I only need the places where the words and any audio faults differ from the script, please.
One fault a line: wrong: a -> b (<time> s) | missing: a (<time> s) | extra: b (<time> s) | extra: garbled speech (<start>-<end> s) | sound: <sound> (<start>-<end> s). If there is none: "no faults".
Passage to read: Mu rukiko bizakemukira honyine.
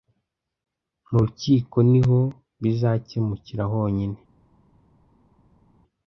extra: niho (1.9 s)